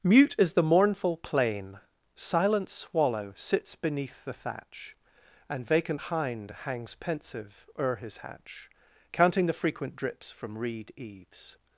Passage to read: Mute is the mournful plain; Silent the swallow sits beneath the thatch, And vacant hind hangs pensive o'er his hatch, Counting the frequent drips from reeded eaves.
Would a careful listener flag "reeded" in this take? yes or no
yes